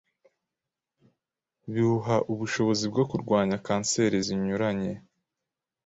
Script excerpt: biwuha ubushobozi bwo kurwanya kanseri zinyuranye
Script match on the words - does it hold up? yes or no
yes